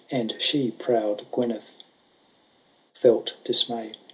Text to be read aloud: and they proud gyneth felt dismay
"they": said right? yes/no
no